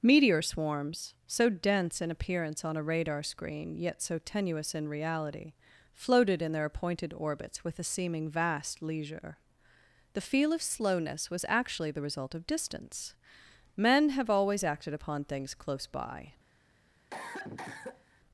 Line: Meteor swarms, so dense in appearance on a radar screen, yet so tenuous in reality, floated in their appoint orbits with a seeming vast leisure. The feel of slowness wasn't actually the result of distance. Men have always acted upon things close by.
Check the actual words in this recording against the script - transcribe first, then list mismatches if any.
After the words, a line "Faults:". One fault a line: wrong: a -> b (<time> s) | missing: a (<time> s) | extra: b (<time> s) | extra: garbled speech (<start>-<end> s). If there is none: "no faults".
Meteor swarms, so dense in appearance on a radar screen, yet so tenuous in reality, floated in their appointed orbits with a seeming vast leisure. The feel of slowness was actually the result of distance. Men have always acted upon things close by.
Faults:
wrong: appoint -> appointed (6.7 s)
wrong: wasn't -> was (11.3 s)